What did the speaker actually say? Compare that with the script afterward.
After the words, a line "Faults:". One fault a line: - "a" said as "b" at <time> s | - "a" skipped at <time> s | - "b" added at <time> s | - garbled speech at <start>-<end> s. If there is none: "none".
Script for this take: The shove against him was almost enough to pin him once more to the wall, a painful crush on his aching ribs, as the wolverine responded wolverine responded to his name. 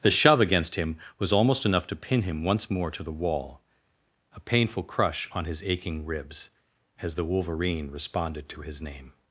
The shove against him was almost enough to pin him once more to the wall, a painful crush on his aching ribs, as the wolverine responded to his name.
Faults:
- "wolverine responded" skipped at 8.5 s